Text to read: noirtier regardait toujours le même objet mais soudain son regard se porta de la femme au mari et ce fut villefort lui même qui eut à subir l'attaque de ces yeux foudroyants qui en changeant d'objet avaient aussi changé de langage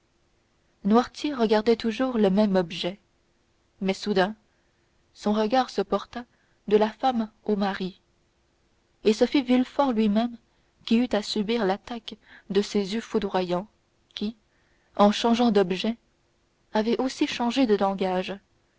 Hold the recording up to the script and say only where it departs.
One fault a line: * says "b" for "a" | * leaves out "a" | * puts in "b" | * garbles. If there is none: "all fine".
all fine